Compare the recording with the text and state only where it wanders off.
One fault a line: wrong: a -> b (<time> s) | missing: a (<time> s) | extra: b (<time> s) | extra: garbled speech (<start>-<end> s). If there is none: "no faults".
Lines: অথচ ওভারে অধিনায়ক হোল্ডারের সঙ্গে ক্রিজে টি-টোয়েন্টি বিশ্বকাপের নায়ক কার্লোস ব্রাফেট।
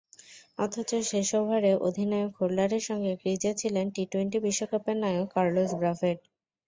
extra: শেষ (1.1 s)
extra: ছিলেন (3.6 s)